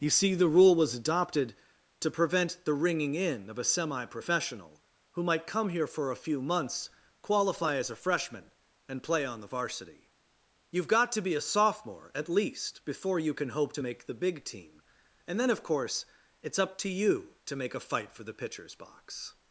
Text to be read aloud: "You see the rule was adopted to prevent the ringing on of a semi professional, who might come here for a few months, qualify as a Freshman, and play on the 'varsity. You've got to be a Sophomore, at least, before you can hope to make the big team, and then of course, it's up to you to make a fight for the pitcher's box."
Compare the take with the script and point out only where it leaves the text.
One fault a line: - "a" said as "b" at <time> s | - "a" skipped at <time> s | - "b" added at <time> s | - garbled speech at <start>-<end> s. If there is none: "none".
- "on" said as "in" at 3.1 s